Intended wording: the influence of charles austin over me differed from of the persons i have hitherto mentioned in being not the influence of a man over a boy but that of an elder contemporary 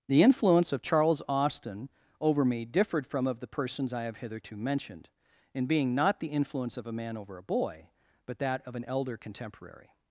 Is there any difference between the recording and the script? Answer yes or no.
no